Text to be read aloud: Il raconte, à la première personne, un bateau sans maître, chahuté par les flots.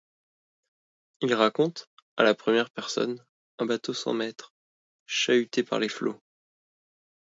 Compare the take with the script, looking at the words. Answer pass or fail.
pass